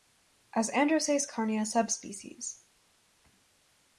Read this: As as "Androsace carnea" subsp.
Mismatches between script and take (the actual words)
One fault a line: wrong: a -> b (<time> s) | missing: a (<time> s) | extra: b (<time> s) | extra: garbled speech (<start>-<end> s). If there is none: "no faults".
missing: as (0.7 s)